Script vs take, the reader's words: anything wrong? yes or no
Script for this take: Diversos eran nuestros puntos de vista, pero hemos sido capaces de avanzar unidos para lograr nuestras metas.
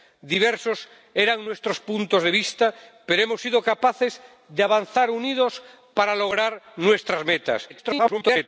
yes